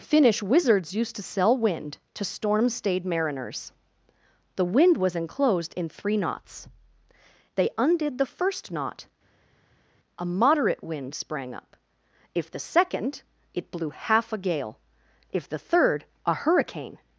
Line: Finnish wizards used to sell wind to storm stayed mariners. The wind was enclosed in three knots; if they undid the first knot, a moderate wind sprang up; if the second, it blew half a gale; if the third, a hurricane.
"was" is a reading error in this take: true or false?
false